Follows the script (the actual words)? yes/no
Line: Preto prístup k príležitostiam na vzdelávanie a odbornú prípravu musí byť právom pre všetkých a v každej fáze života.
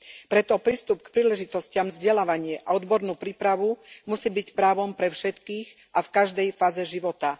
no